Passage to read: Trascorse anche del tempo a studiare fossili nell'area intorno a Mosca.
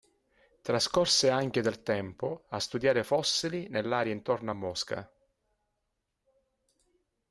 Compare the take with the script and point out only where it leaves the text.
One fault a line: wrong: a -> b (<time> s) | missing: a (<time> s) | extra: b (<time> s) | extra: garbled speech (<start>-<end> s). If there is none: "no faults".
no faults